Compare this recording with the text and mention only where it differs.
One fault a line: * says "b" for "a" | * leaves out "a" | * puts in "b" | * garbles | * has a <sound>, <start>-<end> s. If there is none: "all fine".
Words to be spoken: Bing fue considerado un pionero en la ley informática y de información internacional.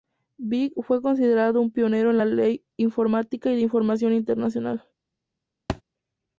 * has a thud, 5.7-5.8 s